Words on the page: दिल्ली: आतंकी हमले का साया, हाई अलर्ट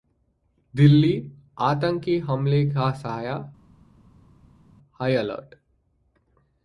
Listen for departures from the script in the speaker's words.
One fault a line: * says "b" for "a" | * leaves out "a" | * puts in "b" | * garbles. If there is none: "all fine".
all fine